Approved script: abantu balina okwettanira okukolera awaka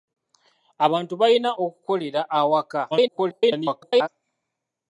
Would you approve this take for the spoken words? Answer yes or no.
no